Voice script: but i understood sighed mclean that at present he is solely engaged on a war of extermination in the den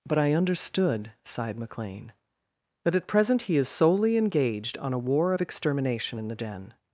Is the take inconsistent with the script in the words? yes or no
no